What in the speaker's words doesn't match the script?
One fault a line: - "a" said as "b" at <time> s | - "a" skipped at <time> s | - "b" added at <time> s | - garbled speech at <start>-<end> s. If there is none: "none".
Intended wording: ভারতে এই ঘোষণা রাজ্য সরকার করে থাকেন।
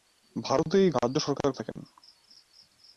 - "ঘোষণা" skipped at 0.9 s
- "করে" skipped at 1.5 s